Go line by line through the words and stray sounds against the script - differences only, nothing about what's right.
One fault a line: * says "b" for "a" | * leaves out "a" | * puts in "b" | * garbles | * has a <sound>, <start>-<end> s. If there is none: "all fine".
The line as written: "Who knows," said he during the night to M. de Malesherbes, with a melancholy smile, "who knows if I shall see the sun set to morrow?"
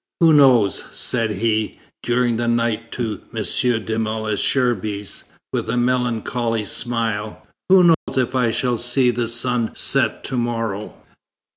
* has a dropout, 7.9-8.1 s